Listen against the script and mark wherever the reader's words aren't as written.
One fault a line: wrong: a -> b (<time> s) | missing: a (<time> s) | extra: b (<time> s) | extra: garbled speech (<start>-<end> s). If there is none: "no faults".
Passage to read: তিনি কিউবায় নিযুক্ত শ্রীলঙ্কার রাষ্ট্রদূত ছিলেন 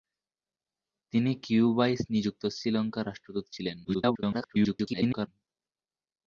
extra: garbled speech (3.8-5.3 s)